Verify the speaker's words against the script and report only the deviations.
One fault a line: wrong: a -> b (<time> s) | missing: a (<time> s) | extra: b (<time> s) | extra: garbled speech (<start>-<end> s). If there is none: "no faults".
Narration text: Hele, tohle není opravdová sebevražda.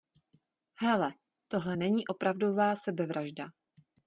no faults